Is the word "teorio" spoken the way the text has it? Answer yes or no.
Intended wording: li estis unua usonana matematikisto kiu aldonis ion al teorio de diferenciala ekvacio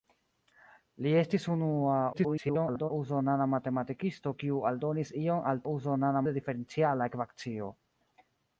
no